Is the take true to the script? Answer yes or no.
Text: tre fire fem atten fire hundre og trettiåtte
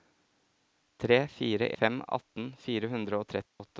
yes